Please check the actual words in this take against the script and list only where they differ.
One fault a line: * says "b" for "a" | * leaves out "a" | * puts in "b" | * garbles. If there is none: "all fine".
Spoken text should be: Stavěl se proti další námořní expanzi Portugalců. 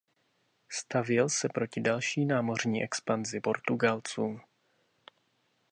all fine